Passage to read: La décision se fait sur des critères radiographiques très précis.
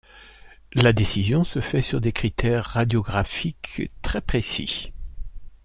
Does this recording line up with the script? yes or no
yes